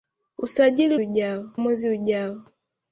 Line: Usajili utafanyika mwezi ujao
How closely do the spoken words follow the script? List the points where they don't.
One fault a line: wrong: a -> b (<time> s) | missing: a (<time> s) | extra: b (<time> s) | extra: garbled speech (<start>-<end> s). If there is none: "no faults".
wrong: utafanyika -> ujao (1.0 s)